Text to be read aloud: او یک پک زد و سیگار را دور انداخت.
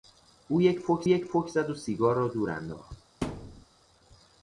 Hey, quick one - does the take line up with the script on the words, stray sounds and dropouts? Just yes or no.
no